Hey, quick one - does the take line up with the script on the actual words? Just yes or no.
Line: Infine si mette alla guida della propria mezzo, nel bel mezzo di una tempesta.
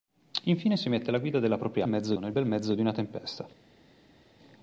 yes